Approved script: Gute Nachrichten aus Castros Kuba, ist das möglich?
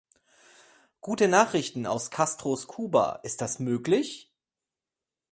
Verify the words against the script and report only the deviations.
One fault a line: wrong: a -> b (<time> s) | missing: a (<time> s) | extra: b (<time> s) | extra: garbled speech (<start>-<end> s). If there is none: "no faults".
no faults